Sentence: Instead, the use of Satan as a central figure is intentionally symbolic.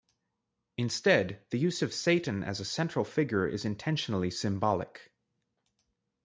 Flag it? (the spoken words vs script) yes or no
no